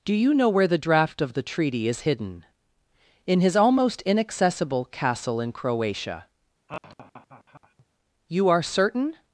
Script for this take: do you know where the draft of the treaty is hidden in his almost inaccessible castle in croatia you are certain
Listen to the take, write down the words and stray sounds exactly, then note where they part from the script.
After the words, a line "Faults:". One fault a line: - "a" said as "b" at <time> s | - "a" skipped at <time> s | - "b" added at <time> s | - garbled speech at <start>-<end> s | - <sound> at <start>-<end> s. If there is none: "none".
do you know where the draft of the treaty is hidden in his almost inaccessible castle in croatia you are certain
Faults:
- laugh at 6.7-7.9 s